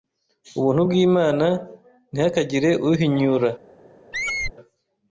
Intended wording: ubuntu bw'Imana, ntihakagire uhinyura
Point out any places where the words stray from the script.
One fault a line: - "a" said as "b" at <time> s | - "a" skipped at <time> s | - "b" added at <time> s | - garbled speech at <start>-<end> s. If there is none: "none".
none